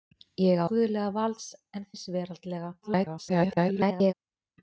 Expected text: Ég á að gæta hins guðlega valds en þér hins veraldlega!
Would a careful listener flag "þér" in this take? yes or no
yes